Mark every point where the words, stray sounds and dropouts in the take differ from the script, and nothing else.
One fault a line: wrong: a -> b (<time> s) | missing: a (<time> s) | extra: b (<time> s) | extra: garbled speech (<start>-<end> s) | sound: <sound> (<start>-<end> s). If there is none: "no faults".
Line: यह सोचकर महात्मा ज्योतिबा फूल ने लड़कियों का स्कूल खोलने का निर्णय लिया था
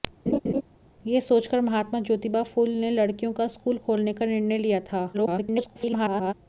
sound: laugh (0.3-0.6 s)
extra: garbled speech (5.1-6.3 s)